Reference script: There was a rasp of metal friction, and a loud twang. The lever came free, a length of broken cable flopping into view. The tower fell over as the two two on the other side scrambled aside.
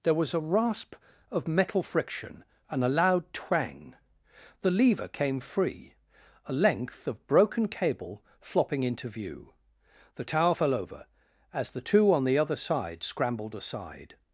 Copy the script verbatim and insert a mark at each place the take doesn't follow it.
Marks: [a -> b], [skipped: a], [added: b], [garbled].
There was a rasp of metal friction, and a loud twang. The lever came free, a length of broken cable flopping into view. The tower fell over as the two [skipped: two] on the other side scrambled aside.